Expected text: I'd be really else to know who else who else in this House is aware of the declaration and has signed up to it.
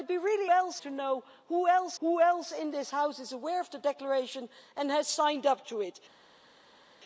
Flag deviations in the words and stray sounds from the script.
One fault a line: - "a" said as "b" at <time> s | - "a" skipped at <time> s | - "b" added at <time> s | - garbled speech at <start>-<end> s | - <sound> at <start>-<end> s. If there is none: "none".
none